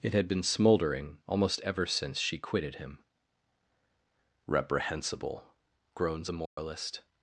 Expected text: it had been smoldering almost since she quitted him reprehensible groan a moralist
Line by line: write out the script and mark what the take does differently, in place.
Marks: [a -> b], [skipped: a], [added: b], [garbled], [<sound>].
it had been smoldering almost [added: ever] since she quitted him reprehensible [groan -> groans] a moralist [dropout]